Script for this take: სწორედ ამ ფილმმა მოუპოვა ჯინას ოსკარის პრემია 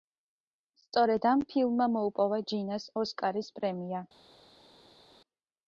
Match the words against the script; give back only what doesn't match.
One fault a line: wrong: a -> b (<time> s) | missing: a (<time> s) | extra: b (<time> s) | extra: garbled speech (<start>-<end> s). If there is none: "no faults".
no faults